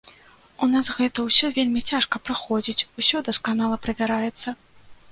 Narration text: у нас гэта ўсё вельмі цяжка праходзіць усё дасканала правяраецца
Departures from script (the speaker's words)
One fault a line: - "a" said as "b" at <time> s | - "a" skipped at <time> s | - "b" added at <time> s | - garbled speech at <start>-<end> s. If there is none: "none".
none